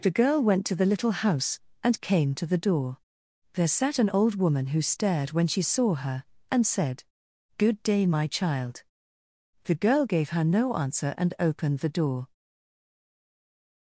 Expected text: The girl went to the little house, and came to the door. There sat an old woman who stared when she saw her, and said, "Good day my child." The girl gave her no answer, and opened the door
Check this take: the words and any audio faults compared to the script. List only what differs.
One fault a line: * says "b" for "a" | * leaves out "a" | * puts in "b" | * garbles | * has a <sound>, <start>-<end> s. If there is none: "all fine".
all fine